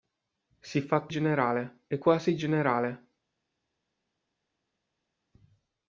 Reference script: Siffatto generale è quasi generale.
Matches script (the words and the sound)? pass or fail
pass